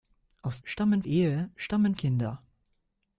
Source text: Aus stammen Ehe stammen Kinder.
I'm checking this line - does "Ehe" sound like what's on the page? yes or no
yes